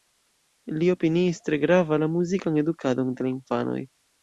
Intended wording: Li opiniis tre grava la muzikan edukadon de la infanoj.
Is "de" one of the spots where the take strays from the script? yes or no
no